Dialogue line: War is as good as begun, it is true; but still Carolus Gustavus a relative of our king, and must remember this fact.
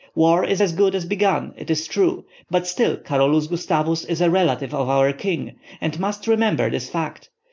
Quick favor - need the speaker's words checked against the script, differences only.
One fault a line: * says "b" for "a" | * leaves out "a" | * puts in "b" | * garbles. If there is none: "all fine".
* puts in "is"